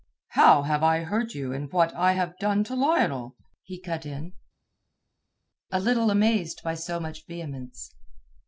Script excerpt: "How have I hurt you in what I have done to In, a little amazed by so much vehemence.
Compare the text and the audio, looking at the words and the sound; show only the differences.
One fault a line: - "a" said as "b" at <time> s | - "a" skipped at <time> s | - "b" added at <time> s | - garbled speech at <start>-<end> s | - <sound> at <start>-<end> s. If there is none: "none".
- "Lionel he cut" added at 2.8 s